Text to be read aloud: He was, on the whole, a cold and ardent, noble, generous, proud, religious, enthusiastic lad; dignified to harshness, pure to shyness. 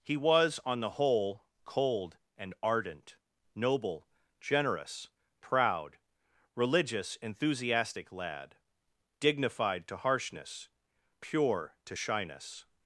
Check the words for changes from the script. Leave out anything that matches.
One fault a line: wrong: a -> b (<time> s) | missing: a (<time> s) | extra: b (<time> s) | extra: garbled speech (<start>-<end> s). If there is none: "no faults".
missing: a (1.4 s)